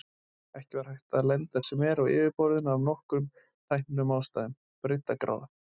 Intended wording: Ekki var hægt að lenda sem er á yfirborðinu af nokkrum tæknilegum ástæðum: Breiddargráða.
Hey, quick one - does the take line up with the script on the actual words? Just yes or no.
yes